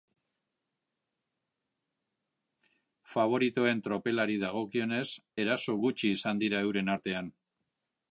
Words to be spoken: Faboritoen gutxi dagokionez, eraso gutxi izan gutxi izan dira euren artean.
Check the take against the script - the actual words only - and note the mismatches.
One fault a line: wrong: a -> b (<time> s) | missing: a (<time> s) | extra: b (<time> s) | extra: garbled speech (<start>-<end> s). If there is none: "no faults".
wrong: gutxi -> tropelari (3.9 s)
missing: gutxi izan (6.4 s)